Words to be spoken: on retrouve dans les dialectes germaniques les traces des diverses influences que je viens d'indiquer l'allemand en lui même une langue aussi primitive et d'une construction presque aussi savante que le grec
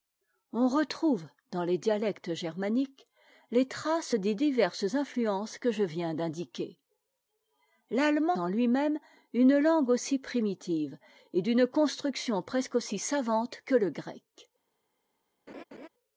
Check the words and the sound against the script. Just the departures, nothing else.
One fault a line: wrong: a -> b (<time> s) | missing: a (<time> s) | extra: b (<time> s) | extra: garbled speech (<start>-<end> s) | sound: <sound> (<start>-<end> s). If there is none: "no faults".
sound: laugh (15.5-15.9 s)